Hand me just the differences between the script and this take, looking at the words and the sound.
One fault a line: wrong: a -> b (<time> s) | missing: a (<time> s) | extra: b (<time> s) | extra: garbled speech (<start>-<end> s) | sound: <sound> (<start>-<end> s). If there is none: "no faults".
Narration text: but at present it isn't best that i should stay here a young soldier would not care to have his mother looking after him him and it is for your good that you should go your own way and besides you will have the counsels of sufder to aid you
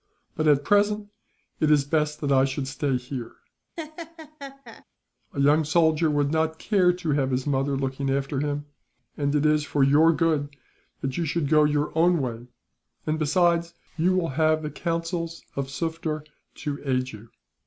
wrong: isn't -> is (1.7 s)
sound: laugh (3.8-4.8 s)
missing: him (8.6 s)